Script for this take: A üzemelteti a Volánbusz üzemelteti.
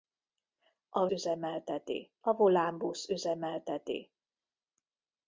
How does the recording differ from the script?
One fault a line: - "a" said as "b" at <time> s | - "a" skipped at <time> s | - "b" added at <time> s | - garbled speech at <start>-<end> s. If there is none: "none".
none